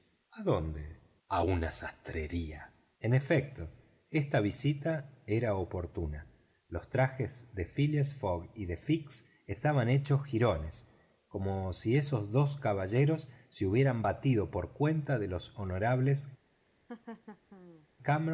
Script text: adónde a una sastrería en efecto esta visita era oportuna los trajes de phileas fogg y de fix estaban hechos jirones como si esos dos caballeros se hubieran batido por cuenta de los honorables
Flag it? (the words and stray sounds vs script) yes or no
yes